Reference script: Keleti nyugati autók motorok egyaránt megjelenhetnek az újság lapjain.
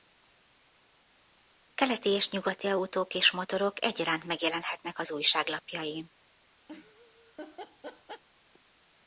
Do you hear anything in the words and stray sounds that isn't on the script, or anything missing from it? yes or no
yes